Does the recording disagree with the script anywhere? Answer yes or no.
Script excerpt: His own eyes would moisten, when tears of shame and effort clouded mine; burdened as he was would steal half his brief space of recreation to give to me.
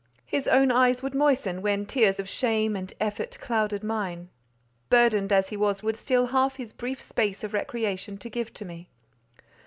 no